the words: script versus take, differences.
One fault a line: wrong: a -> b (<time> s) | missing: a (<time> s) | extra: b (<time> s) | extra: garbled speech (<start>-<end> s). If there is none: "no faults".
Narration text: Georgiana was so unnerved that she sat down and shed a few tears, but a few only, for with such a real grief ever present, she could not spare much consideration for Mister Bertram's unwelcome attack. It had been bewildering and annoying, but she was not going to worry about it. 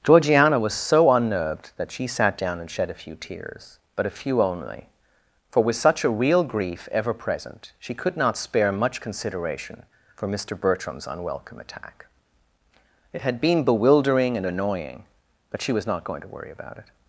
no faults